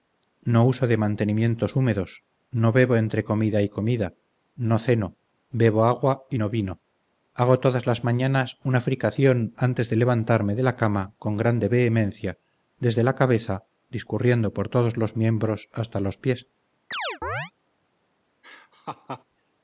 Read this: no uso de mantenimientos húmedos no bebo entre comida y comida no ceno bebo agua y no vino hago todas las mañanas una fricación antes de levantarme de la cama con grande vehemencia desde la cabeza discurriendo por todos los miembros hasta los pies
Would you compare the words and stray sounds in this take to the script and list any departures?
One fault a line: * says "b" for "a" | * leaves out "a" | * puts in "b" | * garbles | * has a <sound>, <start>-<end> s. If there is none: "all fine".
* has a chirp, 16.9-17.5 s
* has a laugh, 18.4-19.2 s